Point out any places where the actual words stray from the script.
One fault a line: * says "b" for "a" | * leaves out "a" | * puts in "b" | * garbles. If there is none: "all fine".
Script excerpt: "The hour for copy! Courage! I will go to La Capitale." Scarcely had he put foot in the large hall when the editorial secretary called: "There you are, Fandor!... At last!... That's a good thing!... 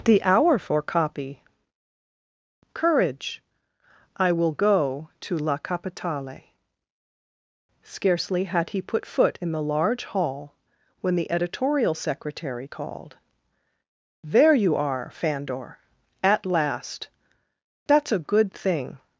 all fine